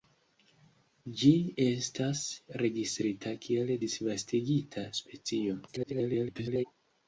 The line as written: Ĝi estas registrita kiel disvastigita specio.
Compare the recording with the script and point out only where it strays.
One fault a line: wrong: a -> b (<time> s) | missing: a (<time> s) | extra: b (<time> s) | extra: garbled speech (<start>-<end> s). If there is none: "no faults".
extra: garbled speech (5.7-6.6 s)